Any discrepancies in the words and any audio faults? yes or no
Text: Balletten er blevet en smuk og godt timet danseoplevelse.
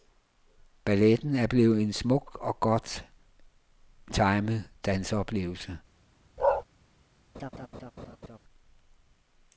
yes